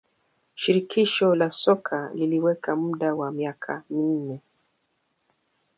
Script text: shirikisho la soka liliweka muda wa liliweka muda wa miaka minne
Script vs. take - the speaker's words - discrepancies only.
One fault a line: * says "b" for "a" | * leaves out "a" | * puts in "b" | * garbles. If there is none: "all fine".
* leaves out "liliweka muda wa"